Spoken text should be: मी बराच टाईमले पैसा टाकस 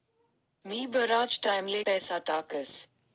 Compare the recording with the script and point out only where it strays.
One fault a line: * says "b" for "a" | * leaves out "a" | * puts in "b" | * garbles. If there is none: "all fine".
all fine